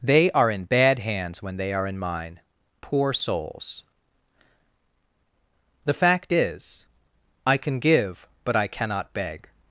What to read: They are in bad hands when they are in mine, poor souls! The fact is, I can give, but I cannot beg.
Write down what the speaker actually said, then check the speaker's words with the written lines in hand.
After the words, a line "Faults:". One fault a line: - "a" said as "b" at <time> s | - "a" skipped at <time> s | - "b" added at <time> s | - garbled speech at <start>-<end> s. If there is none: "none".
They are in bad hands when they are in mine, poor souls! The fact is, I can give, but I cannot beg.
Faults:
none